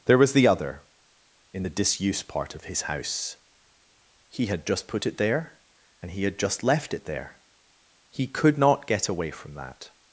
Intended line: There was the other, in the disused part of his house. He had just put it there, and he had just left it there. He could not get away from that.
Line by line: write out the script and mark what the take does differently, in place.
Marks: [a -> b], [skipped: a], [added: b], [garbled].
There was the other, in the [disused -> disuse] part of his house. He had just put it there, and he had just left it there. He could not get away from that.